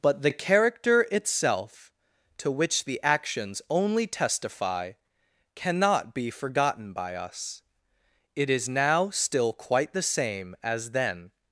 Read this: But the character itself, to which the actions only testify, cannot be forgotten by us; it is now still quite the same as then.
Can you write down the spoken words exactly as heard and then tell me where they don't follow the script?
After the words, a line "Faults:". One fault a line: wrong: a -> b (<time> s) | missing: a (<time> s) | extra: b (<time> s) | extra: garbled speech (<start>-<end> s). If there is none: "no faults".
But the character itself, to which the actions only testify, cannot be forgotten by us; it is now still quite the same as then.
Faults:
no faults